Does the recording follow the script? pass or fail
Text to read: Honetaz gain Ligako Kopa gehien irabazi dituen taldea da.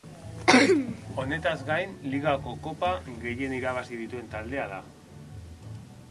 pass